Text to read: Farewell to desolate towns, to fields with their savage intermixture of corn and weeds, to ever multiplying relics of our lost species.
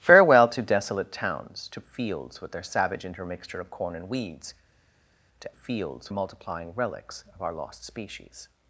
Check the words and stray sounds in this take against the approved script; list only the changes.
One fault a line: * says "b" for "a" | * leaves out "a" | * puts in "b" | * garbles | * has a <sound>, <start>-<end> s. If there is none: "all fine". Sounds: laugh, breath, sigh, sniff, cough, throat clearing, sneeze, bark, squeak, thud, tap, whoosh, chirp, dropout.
* says "fields" for "ever"